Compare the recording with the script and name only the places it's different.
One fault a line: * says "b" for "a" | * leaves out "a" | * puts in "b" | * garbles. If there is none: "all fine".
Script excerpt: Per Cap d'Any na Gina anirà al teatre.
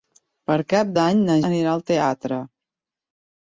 * leaves out "Gina"